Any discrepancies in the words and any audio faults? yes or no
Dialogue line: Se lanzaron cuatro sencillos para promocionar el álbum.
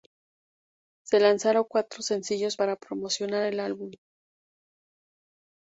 no